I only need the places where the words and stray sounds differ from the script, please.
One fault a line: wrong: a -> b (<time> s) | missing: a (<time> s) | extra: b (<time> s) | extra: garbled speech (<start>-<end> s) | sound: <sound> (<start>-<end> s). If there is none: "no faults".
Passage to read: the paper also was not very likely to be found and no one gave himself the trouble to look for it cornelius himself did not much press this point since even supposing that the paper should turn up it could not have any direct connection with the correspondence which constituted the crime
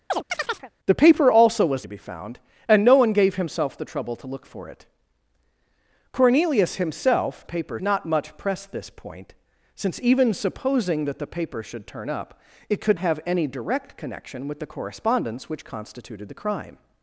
sound: chirp (0.1-0.7 s)
missing: not very likely (1.9 s)
wrong: did -> paper (7.4 s)
missing: not (13.0 s)